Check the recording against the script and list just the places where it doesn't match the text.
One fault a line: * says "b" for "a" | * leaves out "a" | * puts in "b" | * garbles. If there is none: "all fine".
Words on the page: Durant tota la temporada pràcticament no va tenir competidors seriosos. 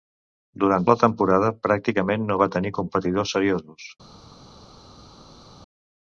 * leaves out "tota"